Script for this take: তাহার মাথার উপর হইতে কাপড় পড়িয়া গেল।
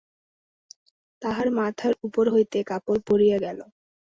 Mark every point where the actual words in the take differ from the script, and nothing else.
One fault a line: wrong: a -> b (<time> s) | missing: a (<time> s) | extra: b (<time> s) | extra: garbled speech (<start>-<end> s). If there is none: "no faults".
no faults